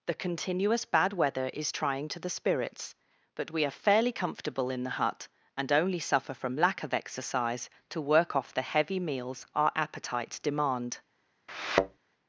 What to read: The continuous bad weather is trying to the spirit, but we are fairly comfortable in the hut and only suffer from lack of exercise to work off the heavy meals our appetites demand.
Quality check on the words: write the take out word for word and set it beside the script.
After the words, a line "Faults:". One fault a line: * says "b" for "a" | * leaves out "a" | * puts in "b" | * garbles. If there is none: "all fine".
The continuous bad weather is trying to the spirits, but we are fairly comfortable in the hut and only suffer from lack of exercise to work off the heavy meals our appetites demand.
Faults:
* says "spirits" for "spirit"